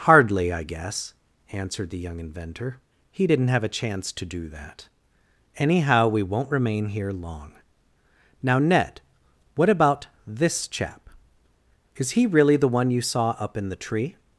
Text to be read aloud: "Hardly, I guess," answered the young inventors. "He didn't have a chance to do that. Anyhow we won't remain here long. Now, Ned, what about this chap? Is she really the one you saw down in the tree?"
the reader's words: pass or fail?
fail